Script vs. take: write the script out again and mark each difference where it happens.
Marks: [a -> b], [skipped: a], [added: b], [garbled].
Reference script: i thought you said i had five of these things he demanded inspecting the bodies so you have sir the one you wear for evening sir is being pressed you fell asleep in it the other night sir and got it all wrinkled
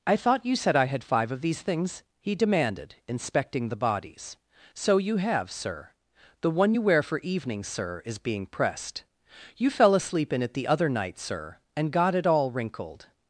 i thought you said i had five of these things he demanded inspecting the bodies so you have sir the one you wear for evening sir is being pressed you fell asleep in it the other night sir and got it all wrinkled